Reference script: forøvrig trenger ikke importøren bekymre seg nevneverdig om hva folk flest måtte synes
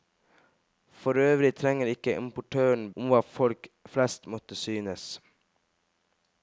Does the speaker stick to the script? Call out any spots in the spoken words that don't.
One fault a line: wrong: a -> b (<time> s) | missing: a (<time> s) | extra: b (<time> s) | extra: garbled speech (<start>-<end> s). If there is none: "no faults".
missing: bekymre seg nevneverdig (2.9 s)